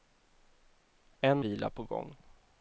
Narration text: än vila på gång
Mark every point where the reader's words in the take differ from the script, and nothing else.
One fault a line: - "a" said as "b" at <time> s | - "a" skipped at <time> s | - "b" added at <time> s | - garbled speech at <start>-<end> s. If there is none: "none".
none